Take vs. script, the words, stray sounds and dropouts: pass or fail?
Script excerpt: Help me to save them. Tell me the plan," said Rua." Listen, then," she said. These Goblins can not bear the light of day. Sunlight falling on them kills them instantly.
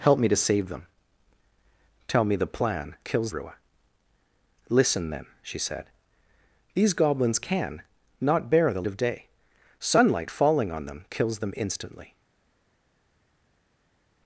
fail